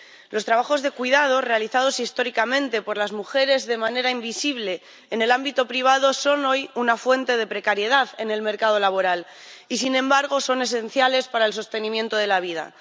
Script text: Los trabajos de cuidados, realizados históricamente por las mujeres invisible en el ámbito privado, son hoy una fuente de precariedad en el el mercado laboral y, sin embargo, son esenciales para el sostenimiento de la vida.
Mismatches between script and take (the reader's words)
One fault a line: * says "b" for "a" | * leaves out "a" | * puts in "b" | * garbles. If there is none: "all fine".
* puts in "de manera"
* leaves out "el"